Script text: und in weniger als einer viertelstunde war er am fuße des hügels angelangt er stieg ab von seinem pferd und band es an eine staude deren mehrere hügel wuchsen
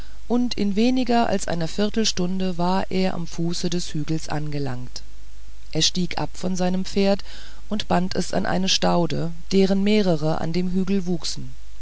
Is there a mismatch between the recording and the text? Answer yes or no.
yes